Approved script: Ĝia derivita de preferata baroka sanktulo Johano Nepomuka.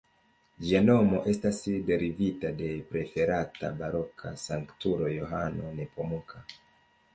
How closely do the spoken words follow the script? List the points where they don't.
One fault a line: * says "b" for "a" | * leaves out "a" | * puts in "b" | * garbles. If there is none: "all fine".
* puts in "nomo estas"